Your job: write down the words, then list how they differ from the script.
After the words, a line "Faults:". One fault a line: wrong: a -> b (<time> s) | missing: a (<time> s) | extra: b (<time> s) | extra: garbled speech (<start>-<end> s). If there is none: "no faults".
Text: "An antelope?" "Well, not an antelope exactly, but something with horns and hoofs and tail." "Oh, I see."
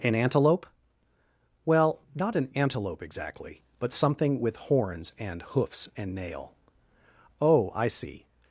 "An antelope?" "Well, not an antelope exactly, but something with horns and hoofs and nail." "Oh, I see."
Faults:
wrong: tail -> nail (6.2 s)